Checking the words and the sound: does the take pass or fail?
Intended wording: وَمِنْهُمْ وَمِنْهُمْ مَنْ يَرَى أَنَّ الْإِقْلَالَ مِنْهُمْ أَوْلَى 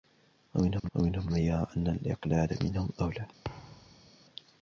fail